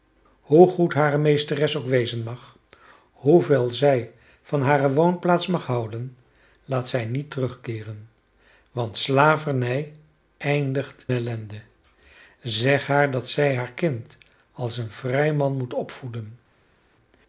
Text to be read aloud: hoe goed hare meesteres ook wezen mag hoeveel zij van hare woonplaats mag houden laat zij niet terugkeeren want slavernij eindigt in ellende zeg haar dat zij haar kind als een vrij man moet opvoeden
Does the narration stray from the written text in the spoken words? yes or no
yes